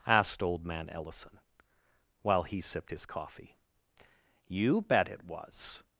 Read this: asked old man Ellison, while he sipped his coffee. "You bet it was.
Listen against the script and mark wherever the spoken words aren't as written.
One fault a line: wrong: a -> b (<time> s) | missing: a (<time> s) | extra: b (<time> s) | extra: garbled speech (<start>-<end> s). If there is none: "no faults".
no faults